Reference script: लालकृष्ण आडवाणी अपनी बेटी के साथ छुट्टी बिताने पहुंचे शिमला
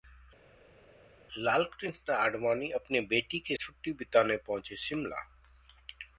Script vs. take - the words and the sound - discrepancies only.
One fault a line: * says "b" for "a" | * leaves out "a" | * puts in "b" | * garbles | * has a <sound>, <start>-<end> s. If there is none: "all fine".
* leaves out "साथ"